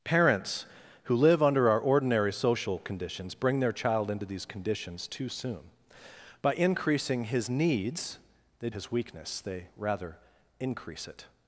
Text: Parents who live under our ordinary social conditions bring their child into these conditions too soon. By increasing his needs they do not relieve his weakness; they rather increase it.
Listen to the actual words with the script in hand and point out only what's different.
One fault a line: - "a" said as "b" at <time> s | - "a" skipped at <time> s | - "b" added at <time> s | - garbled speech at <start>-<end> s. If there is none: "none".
- "do not relieve" skipped at 8.7 s